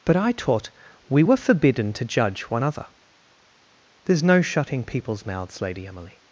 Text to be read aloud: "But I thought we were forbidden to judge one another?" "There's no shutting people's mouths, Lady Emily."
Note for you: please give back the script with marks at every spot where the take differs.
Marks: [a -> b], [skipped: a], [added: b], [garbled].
"But I [thought -> taught] we were forbidden to judge one [another?" -> other] "There's no shutting people's mouths, Lady Emily."